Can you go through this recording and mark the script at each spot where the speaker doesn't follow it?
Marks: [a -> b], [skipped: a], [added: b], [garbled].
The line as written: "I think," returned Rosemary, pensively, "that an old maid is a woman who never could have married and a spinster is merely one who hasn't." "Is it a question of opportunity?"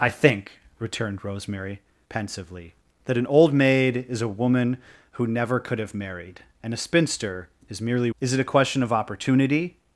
"I think," returned Rosemary, pensively, "that an old maid is a woman who never could have married and a spinster is merely [skipped: one who hasn't."] "Is it a question of opportunity?"